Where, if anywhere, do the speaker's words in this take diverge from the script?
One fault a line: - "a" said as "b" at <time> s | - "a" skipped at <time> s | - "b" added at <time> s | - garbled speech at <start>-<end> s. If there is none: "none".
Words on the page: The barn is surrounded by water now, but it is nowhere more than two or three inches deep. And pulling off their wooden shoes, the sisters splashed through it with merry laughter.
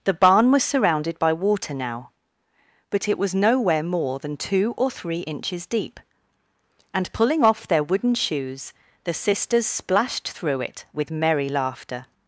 - "is" said as "was" at 0.5 s
- "is" said as "was" at 3.2 s